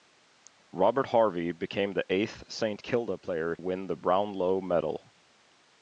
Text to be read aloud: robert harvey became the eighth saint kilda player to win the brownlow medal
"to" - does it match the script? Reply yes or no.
no